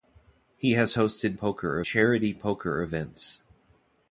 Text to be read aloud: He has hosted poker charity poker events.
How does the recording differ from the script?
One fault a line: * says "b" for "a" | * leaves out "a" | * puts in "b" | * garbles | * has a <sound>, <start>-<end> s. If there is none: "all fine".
all fine